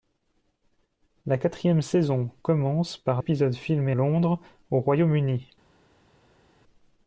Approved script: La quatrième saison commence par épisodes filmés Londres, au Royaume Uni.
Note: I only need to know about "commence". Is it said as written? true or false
true